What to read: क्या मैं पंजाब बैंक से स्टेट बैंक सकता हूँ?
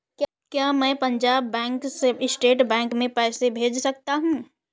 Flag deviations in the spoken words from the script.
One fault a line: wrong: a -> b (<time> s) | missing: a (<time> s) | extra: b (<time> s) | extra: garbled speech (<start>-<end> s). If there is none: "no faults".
extra: में पैसे भेज (2.9 s)